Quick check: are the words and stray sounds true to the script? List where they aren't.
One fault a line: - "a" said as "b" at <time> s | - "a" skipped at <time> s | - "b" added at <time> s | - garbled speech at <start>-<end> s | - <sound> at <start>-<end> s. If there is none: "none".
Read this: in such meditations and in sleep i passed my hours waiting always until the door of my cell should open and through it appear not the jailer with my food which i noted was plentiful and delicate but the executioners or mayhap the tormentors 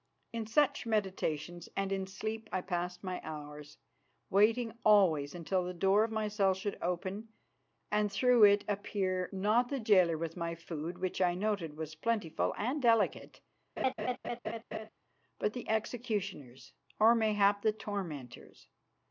- laugh at 13.8-14.9 s